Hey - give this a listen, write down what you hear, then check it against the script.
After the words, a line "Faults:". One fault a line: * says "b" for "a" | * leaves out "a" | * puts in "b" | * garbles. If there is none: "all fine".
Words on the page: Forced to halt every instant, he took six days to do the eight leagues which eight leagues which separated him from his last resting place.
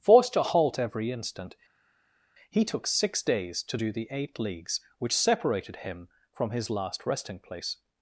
Forced to halt every instant, he took six days to do the eight leagues which separated him from his last resting place.
Faults:
* leaves out "eight leagues which"